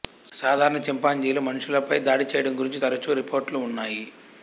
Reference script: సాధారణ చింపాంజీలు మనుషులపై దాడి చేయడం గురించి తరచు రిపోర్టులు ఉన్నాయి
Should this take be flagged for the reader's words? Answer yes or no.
no